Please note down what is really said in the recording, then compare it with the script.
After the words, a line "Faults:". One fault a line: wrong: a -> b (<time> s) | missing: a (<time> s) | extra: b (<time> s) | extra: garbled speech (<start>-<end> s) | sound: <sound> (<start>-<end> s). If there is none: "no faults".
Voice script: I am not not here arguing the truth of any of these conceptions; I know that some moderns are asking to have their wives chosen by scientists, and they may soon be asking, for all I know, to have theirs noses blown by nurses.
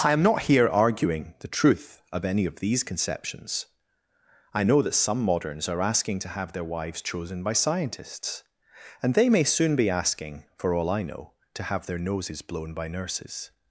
I am not here arguing the truth of any of these conceptions; I know that some moderns are asking to have their wives chosen by scientists, and they may soon be asking, for all I know, to have their noses blown by nurses.
Faults:
missing: not (0.4 s)
wrong: theirs -> their (11.8 s)